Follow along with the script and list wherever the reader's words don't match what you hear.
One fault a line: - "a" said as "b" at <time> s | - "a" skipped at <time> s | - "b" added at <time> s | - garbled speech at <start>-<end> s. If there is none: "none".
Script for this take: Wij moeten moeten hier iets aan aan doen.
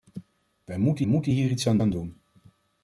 none